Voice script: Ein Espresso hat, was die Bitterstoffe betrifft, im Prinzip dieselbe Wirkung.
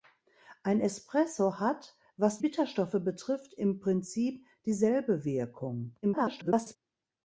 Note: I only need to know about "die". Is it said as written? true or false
false